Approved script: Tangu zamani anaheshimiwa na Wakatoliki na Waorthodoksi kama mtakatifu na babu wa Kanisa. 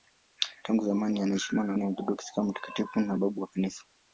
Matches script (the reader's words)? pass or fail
fail